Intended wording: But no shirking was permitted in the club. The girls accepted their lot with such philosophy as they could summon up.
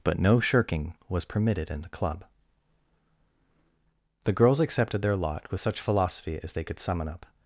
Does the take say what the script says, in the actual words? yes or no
yes